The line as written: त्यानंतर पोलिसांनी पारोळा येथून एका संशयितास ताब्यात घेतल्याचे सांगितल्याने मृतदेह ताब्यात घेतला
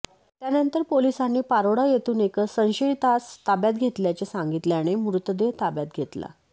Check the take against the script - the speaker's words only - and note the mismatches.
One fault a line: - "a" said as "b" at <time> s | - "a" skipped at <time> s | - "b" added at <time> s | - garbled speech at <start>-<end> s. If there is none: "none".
none